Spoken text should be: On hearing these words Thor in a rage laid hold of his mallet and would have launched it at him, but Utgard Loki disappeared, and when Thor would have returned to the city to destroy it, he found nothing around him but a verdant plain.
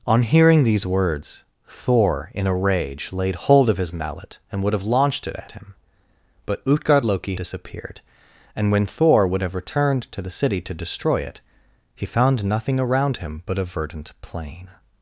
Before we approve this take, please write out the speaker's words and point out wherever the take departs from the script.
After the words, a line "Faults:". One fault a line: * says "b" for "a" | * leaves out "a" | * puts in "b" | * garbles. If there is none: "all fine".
On hearing these words Thor in a rage laid hold of his mallet and would have launched it at him, but Utgard Loki disappeared, and when Thor would have returned to the city to destroy it, he found nothing around him but a verdant plain.
Faults:
all fine